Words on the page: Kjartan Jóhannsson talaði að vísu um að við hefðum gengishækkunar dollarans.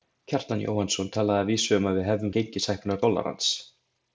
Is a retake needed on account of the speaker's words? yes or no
no